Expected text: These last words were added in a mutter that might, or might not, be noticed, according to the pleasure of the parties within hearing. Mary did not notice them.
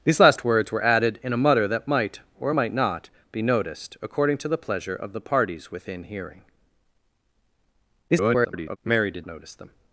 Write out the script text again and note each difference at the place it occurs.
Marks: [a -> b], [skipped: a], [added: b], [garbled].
These last words were added in a mutter that might, or might not, be noticed, according to the pleasure of the parties within hearing. [garbled] Mary did [skipped: not] notice them.